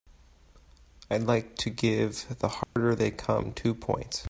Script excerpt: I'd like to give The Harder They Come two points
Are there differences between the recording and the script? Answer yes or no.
no